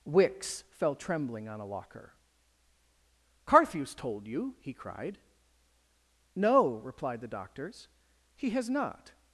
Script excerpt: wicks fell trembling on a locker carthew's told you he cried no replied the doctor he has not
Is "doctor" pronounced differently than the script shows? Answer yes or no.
yes